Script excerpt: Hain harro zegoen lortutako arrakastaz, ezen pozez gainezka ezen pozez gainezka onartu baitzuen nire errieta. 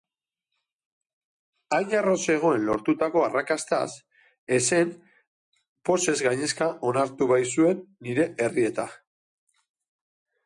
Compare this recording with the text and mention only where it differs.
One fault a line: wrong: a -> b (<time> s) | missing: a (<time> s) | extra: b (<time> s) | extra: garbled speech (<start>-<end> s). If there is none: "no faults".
missing: ezen pozez gainezka (6.7 s)